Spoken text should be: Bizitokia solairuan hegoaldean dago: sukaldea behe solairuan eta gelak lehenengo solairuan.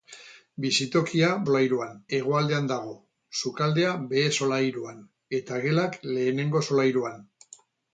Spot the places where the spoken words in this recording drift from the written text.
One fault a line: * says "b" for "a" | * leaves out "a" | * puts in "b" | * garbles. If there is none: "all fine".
all fine